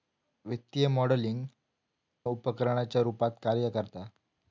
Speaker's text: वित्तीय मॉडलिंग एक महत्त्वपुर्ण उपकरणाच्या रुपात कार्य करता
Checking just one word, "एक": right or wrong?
wrong